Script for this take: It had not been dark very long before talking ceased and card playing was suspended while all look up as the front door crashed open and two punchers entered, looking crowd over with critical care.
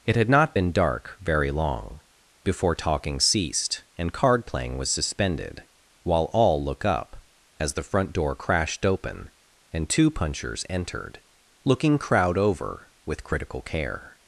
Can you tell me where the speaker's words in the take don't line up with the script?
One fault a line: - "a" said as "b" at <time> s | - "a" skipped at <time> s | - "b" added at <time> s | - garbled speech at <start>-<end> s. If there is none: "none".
none